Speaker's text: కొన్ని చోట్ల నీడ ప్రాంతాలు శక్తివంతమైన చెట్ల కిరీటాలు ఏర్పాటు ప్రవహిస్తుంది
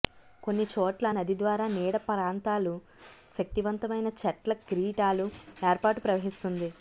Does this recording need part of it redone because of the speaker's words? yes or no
yes